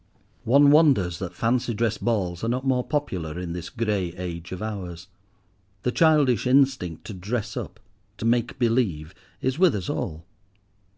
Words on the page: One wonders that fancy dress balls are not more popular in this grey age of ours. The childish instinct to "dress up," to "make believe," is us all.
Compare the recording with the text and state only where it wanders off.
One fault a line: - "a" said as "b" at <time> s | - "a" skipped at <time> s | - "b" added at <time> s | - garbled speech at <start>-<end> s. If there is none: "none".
- "with" added at 9.6 s